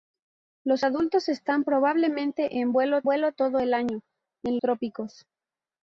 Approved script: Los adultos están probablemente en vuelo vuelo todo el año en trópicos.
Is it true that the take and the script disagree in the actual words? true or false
false